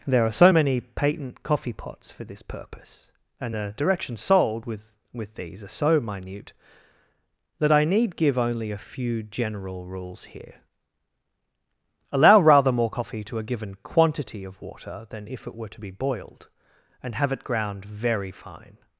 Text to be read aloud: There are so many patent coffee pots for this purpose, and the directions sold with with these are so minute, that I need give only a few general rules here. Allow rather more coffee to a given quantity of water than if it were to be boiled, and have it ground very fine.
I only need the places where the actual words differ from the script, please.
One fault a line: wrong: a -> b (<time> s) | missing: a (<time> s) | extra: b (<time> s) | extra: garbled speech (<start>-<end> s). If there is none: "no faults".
no faults